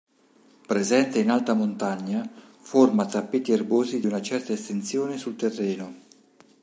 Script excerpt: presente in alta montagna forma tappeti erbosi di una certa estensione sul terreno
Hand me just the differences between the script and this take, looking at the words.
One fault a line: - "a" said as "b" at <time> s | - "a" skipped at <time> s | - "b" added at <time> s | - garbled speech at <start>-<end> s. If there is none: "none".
none